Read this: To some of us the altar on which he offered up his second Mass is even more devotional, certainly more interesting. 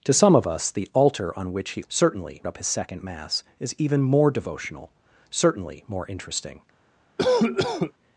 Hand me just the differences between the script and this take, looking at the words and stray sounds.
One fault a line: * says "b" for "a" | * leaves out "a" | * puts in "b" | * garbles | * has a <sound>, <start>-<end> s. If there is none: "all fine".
* says "certainly" for "offered"
* has a cough, 7.2-7.9 s